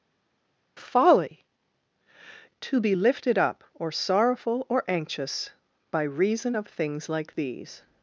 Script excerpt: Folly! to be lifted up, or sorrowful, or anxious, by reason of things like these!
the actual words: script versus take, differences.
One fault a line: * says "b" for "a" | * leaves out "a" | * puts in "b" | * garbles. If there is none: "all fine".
all fine